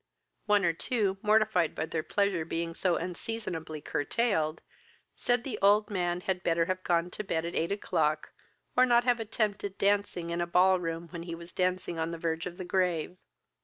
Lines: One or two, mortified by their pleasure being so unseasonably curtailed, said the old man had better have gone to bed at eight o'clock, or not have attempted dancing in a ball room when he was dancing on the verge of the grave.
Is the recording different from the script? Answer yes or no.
no